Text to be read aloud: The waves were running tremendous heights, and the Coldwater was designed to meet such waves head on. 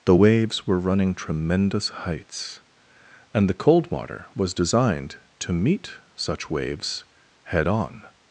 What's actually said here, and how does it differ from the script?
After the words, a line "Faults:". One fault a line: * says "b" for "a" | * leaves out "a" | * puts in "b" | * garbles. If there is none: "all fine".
The waves were running tremendous heights, and the Coldwater was designed to meet such waves head on.
Faults:
all fine